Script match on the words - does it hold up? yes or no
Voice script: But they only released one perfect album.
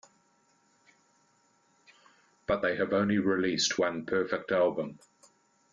no